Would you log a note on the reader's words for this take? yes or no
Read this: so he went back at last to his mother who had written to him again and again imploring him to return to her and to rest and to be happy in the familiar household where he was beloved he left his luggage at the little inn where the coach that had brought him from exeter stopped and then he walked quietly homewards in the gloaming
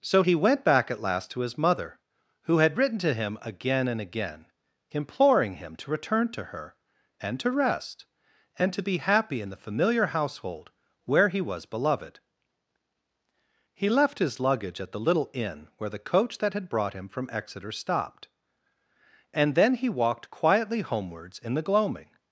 no